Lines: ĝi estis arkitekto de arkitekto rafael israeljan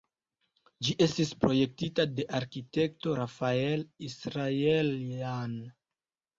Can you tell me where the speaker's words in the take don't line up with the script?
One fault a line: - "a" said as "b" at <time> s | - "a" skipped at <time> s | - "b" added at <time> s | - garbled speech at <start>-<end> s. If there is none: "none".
- "arkitekto" said as "projektita" at 1.4 s